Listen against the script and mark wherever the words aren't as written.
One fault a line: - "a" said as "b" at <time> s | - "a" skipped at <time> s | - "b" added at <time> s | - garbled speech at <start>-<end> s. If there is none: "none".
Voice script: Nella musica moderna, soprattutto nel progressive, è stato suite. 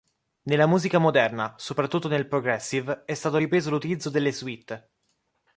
- "ripreso l'utilizzo delle" added at 3.3 s